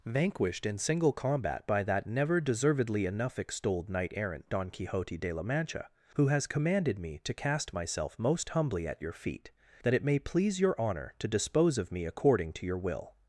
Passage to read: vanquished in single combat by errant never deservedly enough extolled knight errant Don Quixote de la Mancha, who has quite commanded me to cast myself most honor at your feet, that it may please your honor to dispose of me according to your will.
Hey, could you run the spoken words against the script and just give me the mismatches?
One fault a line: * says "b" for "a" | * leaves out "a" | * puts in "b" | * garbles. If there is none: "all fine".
* says "that" for "errant"
* leaves out "quite"
* says "humbly" for "honor"